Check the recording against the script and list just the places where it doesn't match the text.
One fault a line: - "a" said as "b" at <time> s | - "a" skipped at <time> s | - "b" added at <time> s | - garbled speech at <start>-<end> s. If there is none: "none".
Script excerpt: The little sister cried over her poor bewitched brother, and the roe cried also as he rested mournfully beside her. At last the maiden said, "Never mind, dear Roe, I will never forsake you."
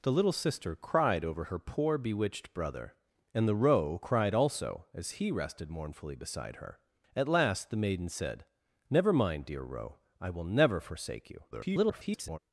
- garbled speech at 11.5-12.4 s